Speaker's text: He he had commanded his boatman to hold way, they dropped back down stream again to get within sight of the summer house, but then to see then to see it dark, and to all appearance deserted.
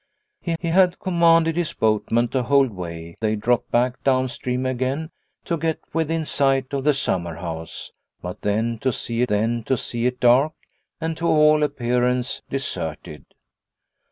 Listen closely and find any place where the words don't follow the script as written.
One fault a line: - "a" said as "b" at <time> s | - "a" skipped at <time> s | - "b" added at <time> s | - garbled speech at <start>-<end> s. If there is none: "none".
none